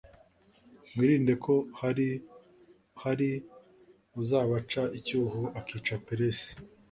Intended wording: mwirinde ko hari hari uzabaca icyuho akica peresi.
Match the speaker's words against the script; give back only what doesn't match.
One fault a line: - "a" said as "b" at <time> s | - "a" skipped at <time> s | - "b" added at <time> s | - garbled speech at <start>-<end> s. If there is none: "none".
none